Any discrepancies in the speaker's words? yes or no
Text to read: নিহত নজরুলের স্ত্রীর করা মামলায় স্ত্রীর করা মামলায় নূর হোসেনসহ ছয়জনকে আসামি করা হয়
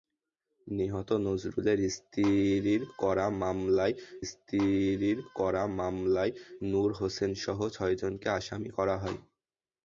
no